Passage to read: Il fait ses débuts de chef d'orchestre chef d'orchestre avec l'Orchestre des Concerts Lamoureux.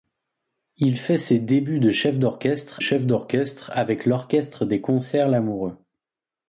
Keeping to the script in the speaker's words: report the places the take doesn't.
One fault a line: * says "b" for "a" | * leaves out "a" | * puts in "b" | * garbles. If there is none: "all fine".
all fine